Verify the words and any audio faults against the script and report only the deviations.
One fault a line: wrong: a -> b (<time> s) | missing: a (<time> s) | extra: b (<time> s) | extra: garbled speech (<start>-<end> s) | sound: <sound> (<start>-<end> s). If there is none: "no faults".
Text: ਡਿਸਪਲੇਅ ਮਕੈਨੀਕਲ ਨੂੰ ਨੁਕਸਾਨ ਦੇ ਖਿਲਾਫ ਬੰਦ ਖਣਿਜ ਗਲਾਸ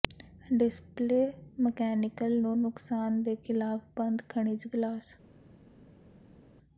no faults